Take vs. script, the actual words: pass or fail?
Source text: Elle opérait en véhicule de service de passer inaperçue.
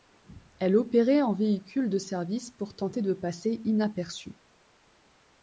fail